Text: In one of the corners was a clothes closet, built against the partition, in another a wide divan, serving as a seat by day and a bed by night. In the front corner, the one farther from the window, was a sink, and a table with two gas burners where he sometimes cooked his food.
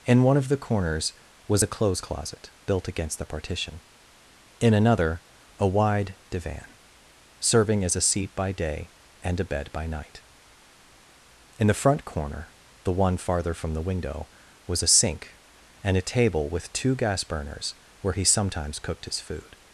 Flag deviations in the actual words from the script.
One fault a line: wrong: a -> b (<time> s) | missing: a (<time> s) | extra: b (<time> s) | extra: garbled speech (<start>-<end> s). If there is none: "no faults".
no faults